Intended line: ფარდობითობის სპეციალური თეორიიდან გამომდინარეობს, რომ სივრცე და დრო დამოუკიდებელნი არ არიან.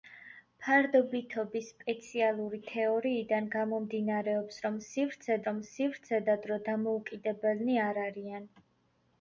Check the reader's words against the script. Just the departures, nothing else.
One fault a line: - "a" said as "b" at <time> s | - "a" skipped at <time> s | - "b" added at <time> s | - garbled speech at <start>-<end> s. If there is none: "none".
- "რომ სივრცე" added at 5.5 s